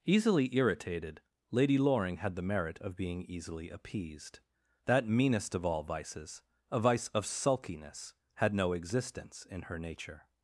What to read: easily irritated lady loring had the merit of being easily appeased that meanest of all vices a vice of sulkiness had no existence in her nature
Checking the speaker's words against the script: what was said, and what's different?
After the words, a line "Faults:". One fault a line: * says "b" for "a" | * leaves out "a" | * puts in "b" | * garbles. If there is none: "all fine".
easily irritated lady loring had the merit of being easily appeased that meanest of all vices a vice of sulkiness had no existence in her nature
Faults:
all fine